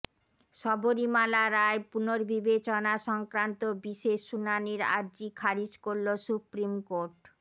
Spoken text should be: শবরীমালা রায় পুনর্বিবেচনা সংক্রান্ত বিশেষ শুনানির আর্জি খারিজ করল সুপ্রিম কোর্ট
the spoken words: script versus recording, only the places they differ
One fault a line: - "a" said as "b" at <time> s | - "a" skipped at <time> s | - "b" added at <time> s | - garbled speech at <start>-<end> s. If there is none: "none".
none